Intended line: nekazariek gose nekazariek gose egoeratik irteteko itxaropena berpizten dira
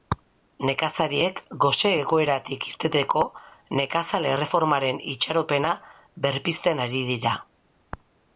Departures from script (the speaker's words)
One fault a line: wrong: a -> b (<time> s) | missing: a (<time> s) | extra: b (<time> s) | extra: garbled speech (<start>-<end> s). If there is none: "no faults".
wrong: nekazariek gose egoeratik irteteko -> egoeratik irteteko nekazal erreformaren (2.0 s)
extra: ari (6.9 s)